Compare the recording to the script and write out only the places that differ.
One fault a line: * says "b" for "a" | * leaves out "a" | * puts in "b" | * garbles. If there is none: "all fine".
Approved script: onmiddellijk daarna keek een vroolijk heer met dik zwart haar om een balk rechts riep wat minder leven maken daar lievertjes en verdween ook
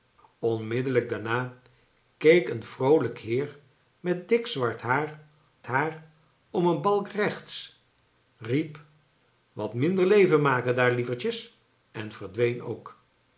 * puts in "haar"